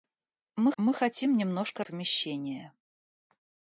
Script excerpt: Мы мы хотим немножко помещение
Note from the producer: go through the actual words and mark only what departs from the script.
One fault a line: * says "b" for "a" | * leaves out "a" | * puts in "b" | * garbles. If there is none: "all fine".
all fine